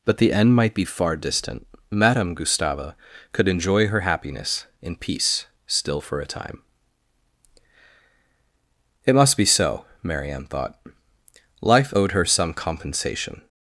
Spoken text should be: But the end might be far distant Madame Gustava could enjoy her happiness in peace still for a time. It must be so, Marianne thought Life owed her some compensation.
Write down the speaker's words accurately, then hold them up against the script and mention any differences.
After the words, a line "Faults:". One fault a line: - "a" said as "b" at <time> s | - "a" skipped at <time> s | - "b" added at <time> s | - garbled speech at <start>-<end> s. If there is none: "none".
But the end might be far distant Madame Gustava could enjoy her happiness in peace still for a time. It must be so, Marianne thought Life owed her some compensation.
Faults:
none